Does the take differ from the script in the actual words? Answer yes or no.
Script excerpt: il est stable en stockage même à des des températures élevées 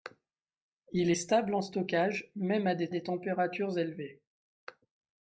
no